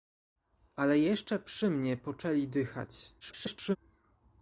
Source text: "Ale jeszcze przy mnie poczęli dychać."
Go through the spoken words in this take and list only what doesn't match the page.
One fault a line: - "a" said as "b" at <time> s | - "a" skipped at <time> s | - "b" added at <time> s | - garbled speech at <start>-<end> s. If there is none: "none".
- garbled speech at 3.2-3.8 s